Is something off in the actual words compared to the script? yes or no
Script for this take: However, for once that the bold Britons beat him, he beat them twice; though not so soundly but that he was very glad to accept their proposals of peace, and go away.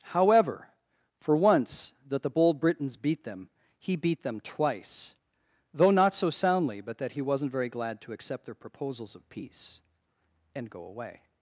yes